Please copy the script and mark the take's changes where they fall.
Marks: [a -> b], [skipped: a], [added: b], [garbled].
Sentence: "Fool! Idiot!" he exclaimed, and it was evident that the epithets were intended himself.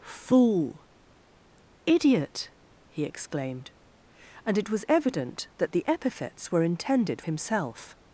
"Fool! Idiot!" he exclaimed, and it was evident that the epithets were intended himself.